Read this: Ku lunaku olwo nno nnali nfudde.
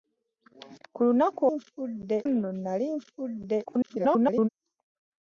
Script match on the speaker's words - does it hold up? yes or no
no